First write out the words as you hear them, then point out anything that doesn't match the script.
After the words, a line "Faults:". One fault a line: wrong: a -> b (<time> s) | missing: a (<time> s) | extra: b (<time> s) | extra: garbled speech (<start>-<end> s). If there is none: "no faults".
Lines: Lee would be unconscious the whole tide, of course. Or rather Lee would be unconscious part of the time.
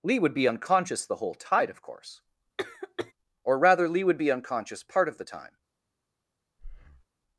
Lee would be unconscious the whole tide, of course. Or rather Lee would be unconscious part of the time.
Faults:
no faults